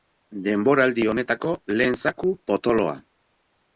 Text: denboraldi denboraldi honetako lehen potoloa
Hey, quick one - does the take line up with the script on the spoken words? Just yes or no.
no